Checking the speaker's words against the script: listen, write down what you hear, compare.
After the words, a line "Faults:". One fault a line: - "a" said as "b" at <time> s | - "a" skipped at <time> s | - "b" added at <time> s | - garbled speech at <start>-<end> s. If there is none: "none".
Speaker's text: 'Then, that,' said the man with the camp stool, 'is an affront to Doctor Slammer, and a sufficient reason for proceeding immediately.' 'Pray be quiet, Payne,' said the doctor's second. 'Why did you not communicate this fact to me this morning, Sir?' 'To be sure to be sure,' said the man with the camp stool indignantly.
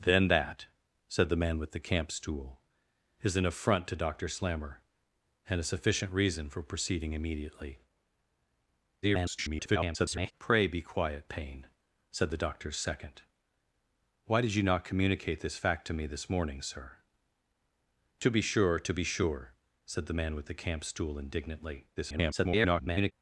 'Then, that,' said the man with the camp stool, 'is an affront to Doctor Slammer, and a sufficient reason for proceeding immediately.' [garbled] 'Pray be quiet, Payne,' said the doctor's second. 'Why did you not communicate this fact to me this morning, Sir?' 'To be sure to be sure,' said the man with the camp stool indignantly. [garbled]
Faults:
- garbled speech at 9.0-10.3 s
- garbled speech at 22.0-23.1 s